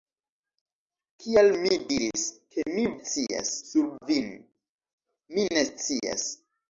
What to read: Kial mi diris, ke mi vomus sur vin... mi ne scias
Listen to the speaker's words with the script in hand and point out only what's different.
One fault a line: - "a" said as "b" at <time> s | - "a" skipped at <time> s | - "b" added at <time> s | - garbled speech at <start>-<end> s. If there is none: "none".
- "vomus" said as "scias" at 3.0 s